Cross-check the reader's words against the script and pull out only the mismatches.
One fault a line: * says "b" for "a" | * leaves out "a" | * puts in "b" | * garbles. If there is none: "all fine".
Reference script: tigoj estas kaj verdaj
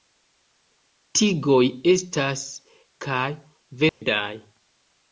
all fine